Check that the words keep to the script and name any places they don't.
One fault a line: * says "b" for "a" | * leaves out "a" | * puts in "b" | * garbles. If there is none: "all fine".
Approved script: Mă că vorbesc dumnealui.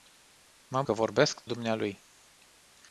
all fine